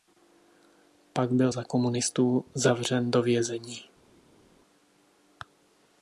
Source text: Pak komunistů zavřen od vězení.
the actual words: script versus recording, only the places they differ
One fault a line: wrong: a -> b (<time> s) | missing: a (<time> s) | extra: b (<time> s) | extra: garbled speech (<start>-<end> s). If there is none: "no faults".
extra: byl za (1.3 s)
wrong: od -> do (3.1 s)